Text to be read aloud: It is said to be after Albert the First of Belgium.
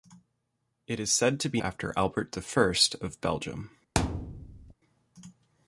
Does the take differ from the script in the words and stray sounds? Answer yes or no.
yes